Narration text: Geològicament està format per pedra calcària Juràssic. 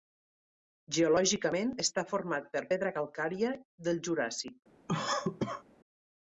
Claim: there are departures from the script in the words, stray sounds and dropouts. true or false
true